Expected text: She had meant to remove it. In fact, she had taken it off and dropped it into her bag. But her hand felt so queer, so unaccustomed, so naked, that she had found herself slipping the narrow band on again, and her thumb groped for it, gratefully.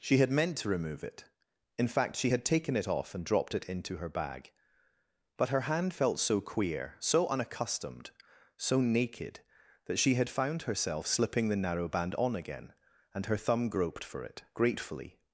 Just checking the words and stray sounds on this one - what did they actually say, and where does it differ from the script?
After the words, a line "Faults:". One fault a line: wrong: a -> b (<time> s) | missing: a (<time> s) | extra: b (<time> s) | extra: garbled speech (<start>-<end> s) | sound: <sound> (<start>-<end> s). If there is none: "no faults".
She had meant to remove it. In fact, she had taken it off and dropped it into her bag. But her hand felt so queer, so unaccustomed, so naked, that she had found herself slipping the narrow band on again, and her thumb groped for it, gratefully.
Faults:
no faults